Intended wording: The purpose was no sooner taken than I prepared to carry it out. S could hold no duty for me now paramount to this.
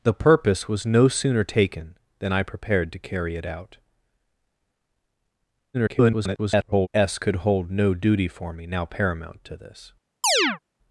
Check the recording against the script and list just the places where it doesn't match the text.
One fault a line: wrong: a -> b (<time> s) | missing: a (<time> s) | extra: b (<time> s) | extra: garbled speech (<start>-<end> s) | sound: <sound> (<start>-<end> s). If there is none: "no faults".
extra: garbled speech (5.7-6.9 s)
sound: chirp (10.2-10.6 s)